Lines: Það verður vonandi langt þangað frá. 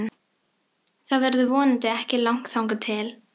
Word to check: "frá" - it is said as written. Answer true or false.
false